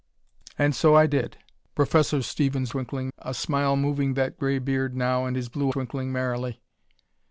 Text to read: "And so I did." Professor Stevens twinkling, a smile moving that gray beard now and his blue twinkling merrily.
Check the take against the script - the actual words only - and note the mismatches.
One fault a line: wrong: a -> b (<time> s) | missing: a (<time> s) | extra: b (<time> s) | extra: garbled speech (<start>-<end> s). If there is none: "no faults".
no faults